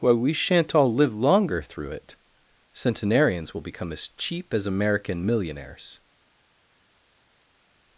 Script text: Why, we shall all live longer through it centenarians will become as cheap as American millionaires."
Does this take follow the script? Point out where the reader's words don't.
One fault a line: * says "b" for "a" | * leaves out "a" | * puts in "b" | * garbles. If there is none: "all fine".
* says "shan't" for "shall"